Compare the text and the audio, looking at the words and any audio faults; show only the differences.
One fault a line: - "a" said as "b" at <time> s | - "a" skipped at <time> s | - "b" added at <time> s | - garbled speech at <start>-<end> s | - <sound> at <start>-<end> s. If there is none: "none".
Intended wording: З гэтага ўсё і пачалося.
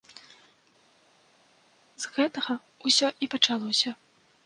none